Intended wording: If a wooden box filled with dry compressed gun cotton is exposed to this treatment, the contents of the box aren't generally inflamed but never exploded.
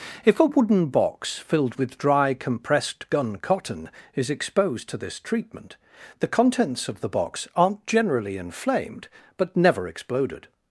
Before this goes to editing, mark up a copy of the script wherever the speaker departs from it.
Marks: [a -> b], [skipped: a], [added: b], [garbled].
If a wooden box filled with dry compressed gun cotton is exposed to this treatment, the contents of the box aren't generally inflamed but never exploded.